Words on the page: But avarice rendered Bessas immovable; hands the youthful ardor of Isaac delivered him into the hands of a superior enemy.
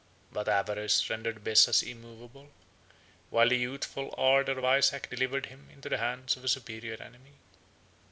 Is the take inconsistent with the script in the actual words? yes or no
yes